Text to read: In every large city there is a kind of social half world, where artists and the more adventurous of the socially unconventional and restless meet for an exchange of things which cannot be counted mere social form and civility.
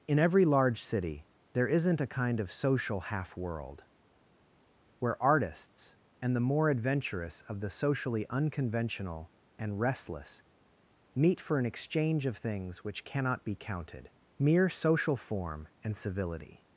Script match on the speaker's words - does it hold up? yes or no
no